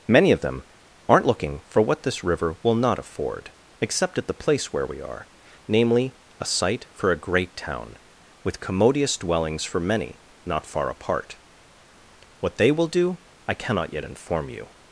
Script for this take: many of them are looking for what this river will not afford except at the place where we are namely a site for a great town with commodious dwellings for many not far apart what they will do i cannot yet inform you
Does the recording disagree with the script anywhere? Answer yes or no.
yes